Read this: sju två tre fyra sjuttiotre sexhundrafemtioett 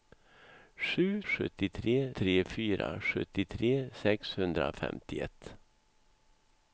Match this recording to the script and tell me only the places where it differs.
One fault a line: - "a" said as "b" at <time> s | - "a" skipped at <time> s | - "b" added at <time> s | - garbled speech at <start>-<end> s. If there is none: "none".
- "två" said as "sjuttiotre" at 1.2 s